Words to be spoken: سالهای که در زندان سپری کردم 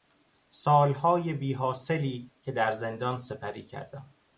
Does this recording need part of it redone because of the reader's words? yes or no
yes